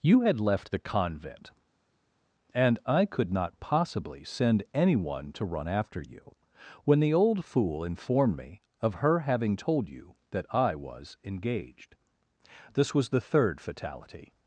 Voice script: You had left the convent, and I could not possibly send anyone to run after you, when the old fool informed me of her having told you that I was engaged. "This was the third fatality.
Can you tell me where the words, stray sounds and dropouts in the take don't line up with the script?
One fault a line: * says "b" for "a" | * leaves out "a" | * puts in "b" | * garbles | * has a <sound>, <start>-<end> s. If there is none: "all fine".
all fine